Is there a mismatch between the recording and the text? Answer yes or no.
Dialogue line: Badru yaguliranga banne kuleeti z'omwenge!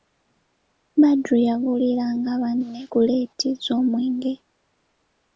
no